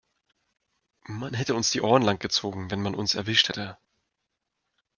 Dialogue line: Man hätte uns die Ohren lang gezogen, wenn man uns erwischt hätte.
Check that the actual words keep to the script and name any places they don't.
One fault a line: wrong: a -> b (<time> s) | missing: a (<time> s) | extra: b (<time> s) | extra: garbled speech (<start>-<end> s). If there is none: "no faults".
no faults